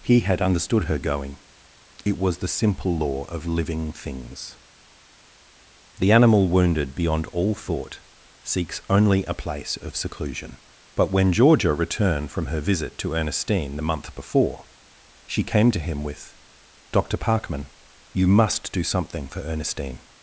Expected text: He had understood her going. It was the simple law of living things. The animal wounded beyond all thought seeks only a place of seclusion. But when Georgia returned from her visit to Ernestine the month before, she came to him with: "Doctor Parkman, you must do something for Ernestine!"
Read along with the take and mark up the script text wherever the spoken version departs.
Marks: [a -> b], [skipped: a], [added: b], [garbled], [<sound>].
He had understood her going. It was the simple law of living things. The animal wounded beyond all thought seeks only a place of seclusion. But when Georgia returned from her visit to Ernestine the month before, she came to him with: "Doctor Parkman, you must do something for Ernestine!"